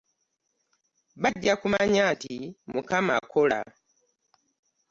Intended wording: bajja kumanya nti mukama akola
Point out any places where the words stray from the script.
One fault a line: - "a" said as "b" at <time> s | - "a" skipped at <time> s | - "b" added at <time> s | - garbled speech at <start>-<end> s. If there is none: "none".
none